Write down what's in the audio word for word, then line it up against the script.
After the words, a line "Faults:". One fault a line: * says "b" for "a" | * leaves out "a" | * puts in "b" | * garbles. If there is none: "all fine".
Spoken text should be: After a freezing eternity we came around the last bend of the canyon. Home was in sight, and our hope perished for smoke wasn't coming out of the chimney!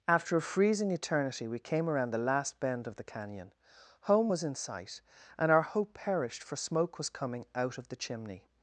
After a freezing eternity we came around the last bend of the canyon. Home was in sight, and our hope perished for smoke was coming out of the chimney!
Faults:
* says "was" for "wasn't"